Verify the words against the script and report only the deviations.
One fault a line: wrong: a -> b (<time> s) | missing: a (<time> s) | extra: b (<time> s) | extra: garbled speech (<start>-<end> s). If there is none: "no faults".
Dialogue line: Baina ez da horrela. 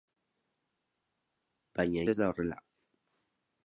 no faults